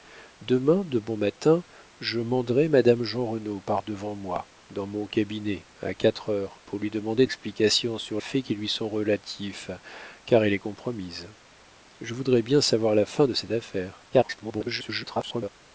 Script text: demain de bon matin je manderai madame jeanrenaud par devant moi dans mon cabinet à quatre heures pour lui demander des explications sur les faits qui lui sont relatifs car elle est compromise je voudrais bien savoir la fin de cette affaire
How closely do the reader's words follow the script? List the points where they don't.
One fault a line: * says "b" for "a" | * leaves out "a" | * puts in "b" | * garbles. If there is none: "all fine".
* leaves out "des"
* leaves out "les"
* garbles